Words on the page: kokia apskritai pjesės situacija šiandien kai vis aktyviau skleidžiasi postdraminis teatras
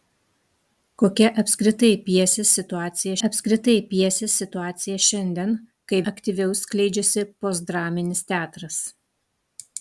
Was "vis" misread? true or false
true